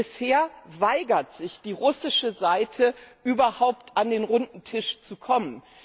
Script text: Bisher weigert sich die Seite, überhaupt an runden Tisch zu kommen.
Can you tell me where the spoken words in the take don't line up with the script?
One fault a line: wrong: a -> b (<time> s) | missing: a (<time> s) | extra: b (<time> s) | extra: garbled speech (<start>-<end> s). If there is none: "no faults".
extra: russische (1.7 s)
extra: den (4.1 s)